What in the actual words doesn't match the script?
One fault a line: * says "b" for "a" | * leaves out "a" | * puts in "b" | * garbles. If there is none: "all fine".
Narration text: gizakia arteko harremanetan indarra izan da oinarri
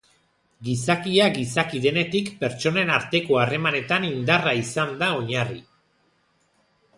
* puts in "gizaki denetik pertsonen"